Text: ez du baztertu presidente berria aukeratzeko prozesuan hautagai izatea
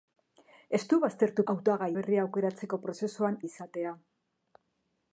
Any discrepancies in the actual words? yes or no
yes